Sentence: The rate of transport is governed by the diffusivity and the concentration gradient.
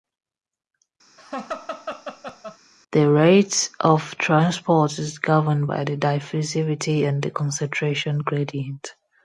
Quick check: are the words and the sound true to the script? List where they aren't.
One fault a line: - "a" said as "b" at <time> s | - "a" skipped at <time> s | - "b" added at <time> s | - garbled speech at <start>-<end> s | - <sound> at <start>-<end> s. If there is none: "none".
- laugh at 1.2-2.6 s